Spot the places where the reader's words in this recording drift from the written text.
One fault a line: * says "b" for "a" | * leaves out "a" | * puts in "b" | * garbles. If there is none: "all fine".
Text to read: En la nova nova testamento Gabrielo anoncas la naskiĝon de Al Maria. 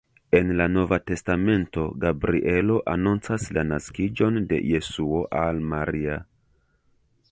* leaves out "nova"
* puts in "Jesuo"